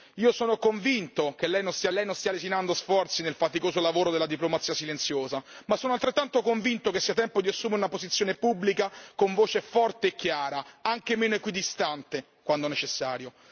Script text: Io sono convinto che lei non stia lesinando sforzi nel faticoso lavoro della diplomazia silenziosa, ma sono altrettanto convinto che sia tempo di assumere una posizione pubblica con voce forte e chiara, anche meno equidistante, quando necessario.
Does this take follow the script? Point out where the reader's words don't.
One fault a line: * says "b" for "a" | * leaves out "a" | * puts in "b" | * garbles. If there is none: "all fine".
* puts in "lei non stia"